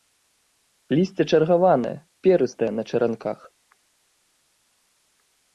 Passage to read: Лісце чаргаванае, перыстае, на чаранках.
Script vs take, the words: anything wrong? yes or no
no